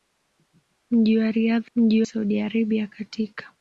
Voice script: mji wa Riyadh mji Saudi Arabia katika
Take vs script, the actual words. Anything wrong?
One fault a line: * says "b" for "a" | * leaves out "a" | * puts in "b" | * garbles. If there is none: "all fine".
all fine